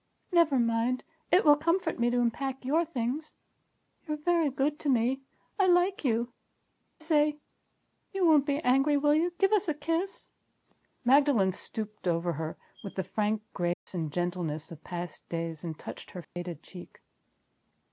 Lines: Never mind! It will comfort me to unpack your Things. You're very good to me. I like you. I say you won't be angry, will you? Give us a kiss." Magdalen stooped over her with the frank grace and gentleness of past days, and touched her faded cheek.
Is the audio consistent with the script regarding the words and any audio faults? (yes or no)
no